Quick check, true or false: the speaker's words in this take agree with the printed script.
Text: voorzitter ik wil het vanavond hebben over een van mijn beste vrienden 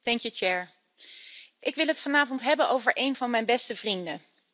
true